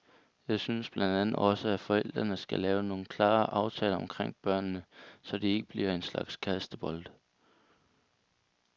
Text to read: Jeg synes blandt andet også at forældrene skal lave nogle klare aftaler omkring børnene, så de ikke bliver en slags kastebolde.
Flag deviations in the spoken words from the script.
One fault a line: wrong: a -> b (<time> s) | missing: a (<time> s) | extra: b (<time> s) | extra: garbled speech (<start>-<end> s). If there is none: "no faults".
no faults